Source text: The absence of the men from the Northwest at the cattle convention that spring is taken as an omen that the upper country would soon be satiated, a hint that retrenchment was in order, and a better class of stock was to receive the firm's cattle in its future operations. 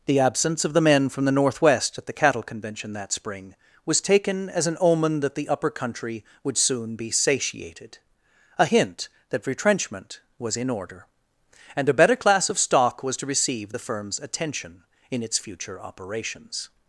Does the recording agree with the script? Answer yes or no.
no